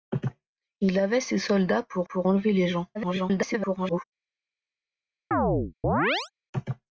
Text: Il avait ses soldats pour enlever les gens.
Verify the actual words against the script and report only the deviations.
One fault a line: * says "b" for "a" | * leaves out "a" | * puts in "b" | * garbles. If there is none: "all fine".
* puts in "pour"
* garbles